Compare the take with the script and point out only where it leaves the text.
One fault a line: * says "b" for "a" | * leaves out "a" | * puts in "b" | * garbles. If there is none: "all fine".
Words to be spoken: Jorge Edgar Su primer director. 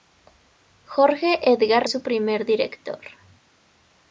all fine